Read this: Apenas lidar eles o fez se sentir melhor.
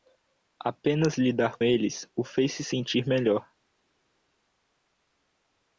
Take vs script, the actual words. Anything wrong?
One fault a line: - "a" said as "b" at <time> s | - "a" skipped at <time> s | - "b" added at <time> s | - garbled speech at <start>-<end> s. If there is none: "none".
none